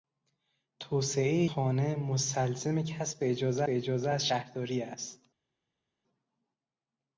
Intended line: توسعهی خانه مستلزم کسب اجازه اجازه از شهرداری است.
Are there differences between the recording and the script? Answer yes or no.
no